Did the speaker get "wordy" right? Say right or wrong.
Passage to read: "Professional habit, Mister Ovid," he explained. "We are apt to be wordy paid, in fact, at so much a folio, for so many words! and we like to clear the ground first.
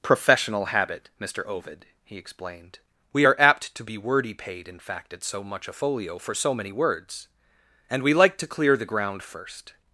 right